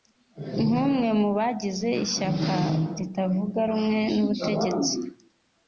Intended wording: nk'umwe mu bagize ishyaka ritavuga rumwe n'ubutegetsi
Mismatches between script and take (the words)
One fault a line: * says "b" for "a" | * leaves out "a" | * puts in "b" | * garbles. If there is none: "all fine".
all fine